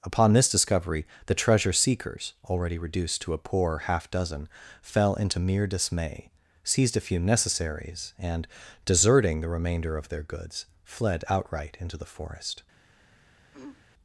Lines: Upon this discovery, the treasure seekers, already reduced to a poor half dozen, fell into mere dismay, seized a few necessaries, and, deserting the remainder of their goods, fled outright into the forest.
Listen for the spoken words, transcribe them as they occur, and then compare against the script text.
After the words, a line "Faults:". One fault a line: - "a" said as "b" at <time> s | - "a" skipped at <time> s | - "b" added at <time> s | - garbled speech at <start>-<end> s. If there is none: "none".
Upon this discovery, the treasure seekers, already reduced to a poor half dozen, fell into mere dismay, seized a few necessaries, and, deserting the remainder of their goods, fled outright into the forest.
Faults:
none